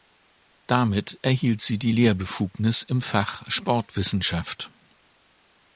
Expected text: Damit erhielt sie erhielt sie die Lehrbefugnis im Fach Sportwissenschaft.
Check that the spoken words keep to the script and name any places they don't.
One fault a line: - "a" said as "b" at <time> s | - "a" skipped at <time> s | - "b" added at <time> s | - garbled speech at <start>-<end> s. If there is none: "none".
- "erhielt sie" skipped at 1.8 s